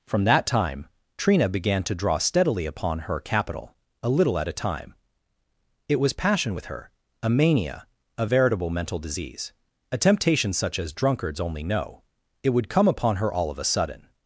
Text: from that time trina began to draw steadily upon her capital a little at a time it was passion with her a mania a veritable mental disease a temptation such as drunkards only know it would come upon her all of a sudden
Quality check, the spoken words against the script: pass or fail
pass